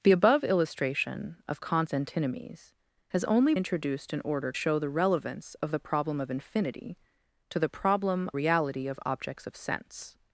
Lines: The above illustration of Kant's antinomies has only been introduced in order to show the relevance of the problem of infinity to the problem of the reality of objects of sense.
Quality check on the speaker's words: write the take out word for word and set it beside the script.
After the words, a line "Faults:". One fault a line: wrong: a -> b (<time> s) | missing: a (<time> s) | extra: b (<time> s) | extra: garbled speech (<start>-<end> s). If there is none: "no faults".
The above illustration of Kant's antinomies has only introduced in order show the relevance of the problem of infinity to the problem reality of objects of sense.
Faults:
missing: been (3.5 s)
missing: to (4.5 s)
missing: of the (8.3 s)